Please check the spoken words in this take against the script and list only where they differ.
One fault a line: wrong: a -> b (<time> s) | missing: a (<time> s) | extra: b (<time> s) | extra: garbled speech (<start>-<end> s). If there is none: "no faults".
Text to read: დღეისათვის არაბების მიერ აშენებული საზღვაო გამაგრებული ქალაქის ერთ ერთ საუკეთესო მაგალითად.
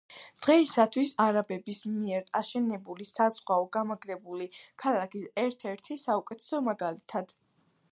no faults